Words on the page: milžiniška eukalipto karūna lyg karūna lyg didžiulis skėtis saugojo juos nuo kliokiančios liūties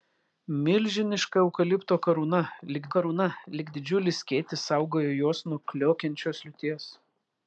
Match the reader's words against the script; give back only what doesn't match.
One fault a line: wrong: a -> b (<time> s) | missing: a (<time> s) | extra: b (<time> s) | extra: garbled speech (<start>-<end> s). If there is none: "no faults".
no faults